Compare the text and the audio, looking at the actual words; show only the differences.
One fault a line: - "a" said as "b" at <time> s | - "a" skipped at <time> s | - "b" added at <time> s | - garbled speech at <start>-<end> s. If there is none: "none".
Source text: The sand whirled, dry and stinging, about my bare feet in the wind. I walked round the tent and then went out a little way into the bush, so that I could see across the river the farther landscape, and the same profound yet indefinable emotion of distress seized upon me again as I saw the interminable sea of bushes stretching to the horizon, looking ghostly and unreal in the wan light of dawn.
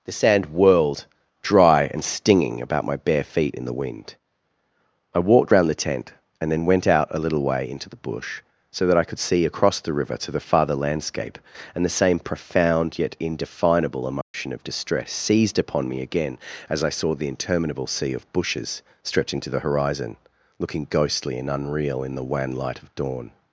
- "to" added at 10.2 s